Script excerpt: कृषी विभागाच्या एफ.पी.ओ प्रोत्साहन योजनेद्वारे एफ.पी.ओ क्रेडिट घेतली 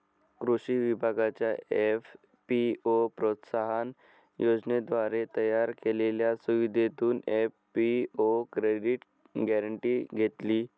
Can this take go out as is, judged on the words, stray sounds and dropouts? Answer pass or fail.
fail